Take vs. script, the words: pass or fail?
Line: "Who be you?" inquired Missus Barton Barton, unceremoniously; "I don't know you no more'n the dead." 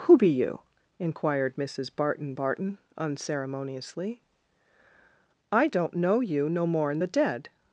pass